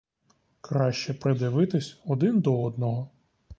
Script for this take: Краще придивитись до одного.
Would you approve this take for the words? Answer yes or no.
no